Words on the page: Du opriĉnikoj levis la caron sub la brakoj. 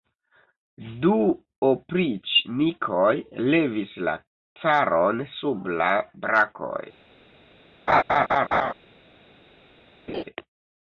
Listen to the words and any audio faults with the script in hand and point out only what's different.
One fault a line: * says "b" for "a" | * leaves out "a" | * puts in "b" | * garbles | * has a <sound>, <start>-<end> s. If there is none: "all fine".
* has a laugh, 7.9-8.7 s
* has a laugh, 10.1-10.2 s